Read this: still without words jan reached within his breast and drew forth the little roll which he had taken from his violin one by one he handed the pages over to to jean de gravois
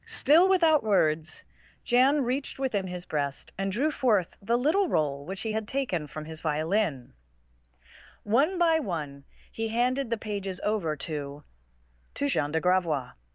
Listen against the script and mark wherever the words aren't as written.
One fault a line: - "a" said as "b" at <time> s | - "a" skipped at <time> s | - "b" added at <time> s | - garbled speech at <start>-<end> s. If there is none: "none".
none